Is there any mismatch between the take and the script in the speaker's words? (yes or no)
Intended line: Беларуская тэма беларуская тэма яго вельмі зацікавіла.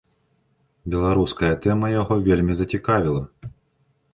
yes